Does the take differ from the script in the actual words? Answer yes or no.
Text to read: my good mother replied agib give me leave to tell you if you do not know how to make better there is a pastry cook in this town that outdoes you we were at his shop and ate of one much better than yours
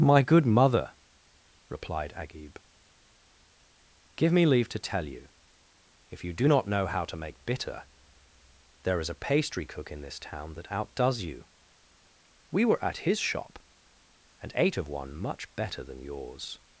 yes